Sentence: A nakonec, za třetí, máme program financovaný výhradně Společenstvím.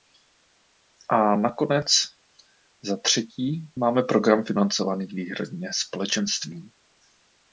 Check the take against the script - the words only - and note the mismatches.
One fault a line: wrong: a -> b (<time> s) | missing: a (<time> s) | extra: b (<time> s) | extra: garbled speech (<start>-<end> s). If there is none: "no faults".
no faults